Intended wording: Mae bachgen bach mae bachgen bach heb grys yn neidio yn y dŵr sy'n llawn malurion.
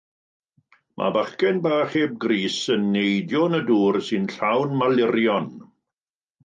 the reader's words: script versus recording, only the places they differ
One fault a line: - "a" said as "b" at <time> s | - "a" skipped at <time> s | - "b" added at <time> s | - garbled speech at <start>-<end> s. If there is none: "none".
- "mae bachgen bach" skipped at 1.9 s